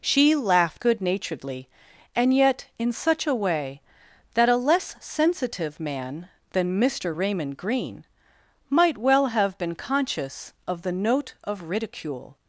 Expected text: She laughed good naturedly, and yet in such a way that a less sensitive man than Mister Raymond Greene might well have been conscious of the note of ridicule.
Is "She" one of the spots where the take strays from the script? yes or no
no